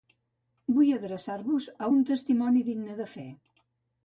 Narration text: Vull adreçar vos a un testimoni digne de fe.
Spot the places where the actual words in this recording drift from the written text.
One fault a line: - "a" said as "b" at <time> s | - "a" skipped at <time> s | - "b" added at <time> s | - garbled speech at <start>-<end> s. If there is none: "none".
none